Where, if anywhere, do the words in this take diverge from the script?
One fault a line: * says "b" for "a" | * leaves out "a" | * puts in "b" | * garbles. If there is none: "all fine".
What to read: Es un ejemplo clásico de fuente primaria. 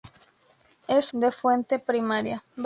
* leaves out "un ejemplo clásico"